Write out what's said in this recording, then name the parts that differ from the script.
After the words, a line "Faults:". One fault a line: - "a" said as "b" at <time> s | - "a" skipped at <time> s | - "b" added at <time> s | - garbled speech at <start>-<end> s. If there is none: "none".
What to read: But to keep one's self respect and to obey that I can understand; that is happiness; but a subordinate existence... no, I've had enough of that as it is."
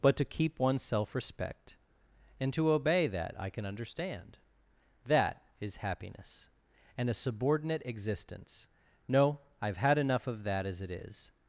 But to keep one's self respect and to obey that I can understand; that is happiness; and a subordinate existence... no, I've had enough of that as it is."
Faults:
- "but" said as "and" at 7.0 s